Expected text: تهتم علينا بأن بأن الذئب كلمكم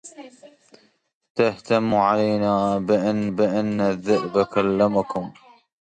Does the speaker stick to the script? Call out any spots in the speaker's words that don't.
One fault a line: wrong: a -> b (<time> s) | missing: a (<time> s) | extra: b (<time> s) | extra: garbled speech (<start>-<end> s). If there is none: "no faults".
no faults